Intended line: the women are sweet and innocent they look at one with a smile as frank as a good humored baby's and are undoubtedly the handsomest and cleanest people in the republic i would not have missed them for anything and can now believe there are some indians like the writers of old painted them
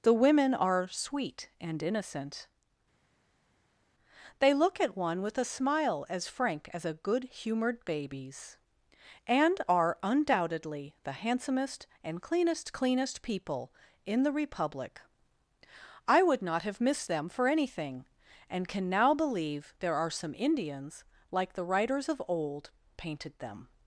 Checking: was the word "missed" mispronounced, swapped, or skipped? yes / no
no